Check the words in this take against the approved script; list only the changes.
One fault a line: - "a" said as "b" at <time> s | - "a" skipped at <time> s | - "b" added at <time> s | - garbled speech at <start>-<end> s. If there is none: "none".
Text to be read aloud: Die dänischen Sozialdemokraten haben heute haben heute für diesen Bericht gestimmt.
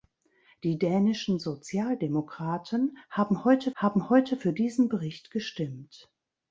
none